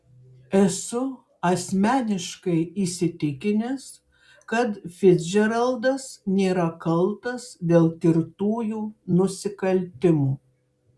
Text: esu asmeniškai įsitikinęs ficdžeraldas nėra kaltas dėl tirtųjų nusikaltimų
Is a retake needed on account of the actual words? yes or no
yes